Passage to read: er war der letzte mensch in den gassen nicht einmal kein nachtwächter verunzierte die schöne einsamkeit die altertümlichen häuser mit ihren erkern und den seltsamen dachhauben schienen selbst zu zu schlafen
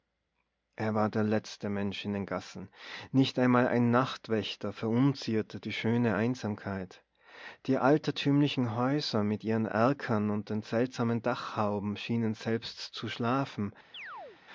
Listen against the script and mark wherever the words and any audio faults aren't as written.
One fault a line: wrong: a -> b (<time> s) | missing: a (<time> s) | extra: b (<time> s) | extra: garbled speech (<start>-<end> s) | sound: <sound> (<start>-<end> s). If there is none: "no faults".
wrong: kein -> ein (3.7 s)
missing: zu (13.1 s)
sound: chirp (13.9-14.4 s)